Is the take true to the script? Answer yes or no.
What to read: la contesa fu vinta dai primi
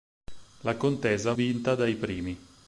no